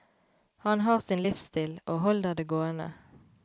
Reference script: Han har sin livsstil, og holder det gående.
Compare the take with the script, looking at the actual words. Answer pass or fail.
pass